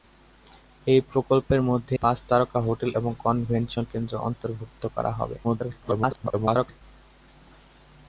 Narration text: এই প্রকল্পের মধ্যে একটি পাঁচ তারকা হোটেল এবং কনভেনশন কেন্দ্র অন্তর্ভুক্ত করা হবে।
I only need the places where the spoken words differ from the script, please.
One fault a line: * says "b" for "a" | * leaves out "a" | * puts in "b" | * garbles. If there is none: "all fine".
* leaves out "একটি"
* garbles